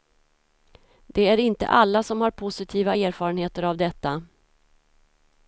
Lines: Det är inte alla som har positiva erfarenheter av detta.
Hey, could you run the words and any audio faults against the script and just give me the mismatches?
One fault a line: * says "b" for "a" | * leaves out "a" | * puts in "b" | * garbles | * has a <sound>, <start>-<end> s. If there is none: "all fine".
all fine